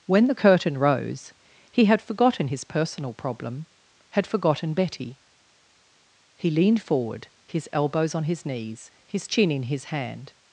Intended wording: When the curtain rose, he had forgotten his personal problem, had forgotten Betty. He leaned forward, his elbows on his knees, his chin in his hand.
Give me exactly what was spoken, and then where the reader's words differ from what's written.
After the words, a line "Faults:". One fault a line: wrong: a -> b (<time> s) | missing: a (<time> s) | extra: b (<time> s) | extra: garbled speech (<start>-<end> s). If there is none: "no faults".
When the curtain rose, he had forgotten his personal problem, had forgotten Betty. He leaned forward, his elbows on his knees, his chin in his hand.
Faults:
no faults